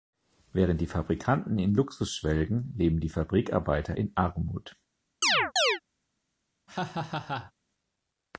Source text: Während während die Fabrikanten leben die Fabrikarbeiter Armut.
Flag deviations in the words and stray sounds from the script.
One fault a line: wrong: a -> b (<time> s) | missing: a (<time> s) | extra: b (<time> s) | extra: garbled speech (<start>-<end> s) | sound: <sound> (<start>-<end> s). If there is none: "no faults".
missing: während (0.8 s)
extra: in Luxus schwelgen (1.6 s)
extra: in (4.0 s)
sound: chirp (5.2-5.8 s)
sound: laugh (6.7-7.5 s)